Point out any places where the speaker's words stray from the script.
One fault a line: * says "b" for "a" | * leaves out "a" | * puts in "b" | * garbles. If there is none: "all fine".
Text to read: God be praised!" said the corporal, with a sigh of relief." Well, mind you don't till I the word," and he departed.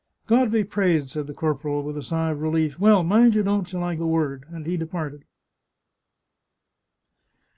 all fine